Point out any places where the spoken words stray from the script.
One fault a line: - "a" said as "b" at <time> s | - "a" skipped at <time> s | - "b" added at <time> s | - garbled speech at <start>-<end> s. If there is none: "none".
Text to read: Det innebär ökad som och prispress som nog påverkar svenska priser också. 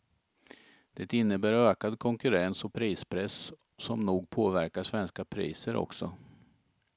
- "som" said as "konkurrens" at 2.0 s